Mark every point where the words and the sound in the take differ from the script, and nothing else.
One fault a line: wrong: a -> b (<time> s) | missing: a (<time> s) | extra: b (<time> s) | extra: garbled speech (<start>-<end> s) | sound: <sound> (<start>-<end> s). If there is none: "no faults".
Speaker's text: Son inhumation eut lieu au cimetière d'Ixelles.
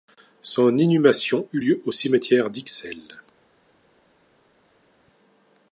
no faults